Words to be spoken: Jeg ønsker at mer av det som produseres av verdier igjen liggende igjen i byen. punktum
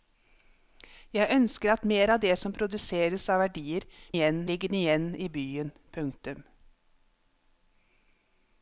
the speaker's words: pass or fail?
pass